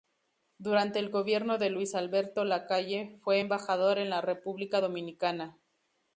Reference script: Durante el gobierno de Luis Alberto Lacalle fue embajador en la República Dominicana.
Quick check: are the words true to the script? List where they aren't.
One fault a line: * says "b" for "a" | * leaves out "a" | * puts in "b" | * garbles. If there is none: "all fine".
all fine